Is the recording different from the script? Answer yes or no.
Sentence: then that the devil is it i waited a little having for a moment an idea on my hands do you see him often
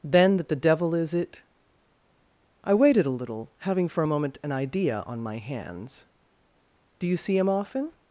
no